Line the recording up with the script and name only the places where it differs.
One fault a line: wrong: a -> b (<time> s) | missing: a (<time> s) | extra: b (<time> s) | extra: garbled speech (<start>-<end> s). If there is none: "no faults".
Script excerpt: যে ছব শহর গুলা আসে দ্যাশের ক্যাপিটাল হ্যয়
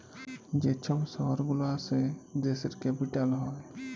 no faults